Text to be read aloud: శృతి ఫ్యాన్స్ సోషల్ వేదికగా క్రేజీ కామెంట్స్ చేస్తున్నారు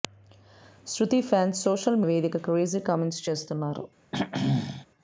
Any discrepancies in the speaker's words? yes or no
no